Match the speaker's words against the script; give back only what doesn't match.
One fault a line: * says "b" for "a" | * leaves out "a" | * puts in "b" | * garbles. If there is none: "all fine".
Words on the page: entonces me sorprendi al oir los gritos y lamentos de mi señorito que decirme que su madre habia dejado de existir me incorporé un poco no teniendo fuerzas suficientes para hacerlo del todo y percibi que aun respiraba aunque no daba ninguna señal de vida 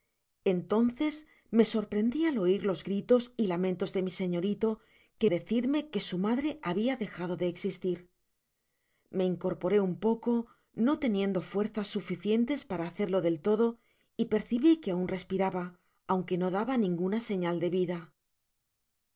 all fine